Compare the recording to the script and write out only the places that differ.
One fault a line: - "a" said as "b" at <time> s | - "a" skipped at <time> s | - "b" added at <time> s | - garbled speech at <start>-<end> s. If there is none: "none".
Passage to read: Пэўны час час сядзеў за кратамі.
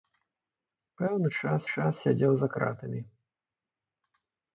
none